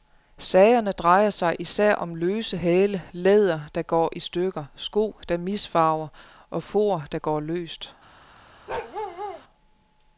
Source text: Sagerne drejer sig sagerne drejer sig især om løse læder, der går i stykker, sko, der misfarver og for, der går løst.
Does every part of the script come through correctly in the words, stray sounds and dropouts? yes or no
no